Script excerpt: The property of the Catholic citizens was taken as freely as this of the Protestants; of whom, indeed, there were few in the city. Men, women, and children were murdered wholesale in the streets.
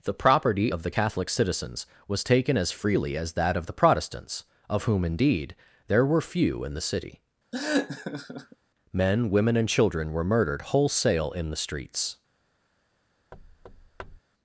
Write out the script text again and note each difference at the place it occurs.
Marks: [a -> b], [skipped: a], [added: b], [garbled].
The property of the Catholic citizens was taken as freely as [this -> that] of the Protestants; of whom, indeed, there were few in the city. Men, women, and children were murdered wholesale in the streets.